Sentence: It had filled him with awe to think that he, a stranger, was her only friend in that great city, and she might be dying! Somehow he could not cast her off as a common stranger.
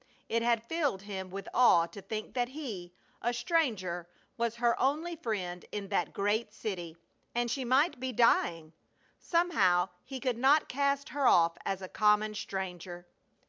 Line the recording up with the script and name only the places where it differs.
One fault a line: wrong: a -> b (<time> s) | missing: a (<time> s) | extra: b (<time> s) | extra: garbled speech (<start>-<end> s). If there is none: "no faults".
no faults